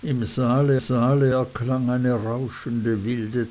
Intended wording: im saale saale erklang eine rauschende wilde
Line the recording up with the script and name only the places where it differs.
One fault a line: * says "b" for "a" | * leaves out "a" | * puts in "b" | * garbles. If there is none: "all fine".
all fine